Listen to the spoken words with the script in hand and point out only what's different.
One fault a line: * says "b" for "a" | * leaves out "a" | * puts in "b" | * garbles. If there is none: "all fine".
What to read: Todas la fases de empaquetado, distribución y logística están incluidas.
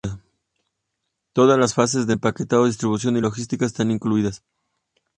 * says "las" for "la"